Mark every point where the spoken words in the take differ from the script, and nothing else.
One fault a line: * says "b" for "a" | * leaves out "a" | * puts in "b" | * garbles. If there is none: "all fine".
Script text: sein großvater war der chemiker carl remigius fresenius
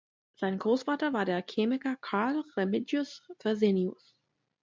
all fine